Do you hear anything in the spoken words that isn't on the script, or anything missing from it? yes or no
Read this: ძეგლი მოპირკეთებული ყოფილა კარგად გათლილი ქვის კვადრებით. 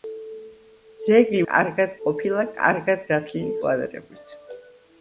yes